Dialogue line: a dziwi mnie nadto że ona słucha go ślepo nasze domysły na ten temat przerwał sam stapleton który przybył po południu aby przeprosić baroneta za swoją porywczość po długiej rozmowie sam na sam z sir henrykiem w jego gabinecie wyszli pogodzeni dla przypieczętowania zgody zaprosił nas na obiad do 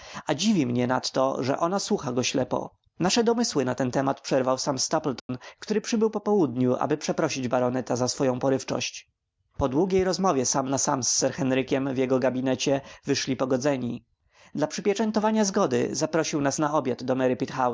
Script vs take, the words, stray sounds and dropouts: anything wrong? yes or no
yes